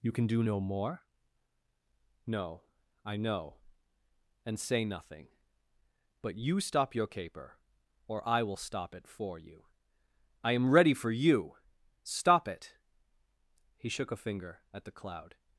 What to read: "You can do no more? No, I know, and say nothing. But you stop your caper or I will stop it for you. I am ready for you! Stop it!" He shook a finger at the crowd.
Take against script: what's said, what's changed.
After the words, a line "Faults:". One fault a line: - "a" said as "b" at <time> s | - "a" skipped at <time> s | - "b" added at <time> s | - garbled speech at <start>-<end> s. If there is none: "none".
"You can do no more? No, I know, and say nothing. But you stop your caper or I will stop it for you. I am ready for you! Stop it!" He shook a finger at the cloud.
Faults:
- "crowd" said as "cloud" at 15.0 s